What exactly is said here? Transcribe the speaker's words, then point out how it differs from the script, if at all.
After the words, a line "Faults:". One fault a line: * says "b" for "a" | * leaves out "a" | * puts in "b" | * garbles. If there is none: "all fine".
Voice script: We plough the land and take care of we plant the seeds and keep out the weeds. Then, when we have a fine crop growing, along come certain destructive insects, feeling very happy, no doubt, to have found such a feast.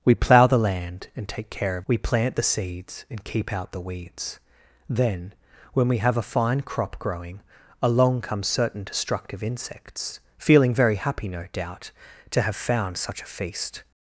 We plough the land and take care of we plant the seeds and keep out the weeds. Then, when we have a fine crop growing, along come certain destructive insects, feeling very happy, no doubt, to have found such a feast.
Faults:
all fine